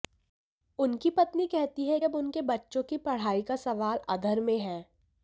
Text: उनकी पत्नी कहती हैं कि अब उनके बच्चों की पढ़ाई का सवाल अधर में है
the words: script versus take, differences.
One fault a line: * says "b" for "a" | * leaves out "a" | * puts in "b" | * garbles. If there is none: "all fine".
* leaves out "कि"